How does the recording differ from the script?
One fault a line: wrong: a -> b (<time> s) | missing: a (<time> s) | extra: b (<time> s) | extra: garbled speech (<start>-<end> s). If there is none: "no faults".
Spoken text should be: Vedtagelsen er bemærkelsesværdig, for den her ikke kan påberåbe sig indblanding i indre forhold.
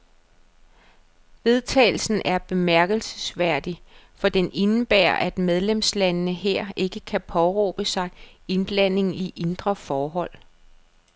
extra: indebærer at medlemslandene (4.5 s)